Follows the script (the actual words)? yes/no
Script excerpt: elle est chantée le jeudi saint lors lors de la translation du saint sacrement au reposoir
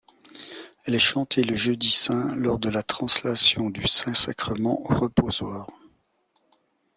no